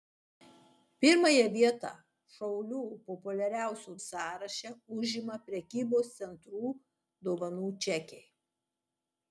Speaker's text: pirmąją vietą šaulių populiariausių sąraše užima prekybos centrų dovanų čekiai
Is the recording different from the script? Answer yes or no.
no